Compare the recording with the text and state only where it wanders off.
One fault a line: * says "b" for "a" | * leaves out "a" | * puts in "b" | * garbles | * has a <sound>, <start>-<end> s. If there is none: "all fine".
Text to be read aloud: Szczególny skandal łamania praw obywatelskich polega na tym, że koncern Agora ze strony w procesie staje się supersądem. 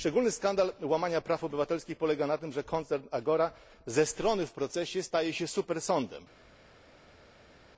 all fine